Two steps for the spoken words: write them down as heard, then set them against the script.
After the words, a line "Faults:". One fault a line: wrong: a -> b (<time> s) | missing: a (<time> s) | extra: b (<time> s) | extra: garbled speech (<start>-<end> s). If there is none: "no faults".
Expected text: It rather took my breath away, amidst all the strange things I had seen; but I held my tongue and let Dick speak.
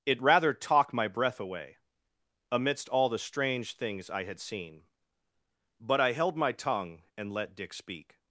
It rather talk my breath away, amidst all the strange things I had seen; but I held my tongue and let Dick speak.
Faults:
wrong: took -> talk (0.5 s)